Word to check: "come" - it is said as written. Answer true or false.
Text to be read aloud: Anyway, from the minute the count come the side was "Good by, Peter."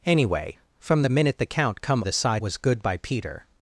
true